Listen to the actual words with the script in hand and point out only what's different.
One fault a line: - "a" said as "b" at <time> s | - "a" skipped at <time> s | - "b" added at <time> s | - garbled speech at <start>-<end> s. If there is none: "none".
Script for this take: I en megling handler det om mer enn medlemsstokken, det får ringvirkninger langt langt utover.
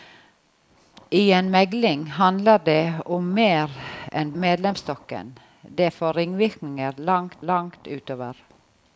none